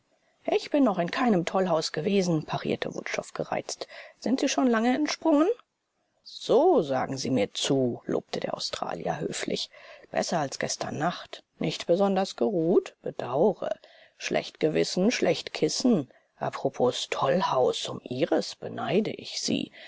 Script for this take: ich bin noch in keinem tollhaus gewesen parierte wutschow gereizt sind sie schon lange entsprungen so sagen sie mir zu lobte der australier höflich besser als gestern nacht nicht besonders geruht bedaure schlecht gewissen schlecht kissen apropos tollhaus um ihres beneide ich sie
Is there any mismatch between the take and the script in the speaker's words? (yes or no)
no